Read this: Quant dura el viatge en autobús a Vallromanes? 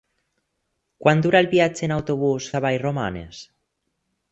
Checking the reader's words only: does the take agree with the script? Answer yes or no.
yes